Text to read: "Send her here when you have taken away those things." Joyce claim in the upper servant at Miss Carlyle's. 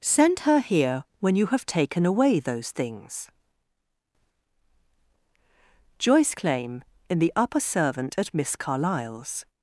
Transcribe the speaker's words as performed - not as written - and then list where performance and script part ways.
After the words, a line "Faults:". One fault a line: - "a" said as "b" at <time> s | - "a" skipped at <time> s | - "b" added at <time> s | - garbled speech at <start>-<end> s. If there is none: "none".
"Send her here when you have taken away those things." Joyce claim in the upper servant at Miss Carlyle's.
Faults:
none